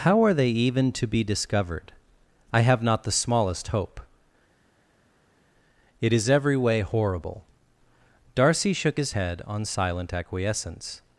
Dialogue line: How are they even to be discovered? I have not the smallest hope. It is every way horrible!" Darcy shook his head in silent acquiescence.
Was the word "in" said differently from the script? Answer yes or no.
yes